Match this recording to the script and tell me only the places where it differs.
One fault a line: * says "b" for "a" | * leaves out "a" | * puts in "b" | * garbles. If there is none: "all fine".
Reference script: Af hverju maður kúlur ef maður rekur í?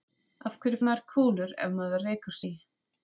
all fine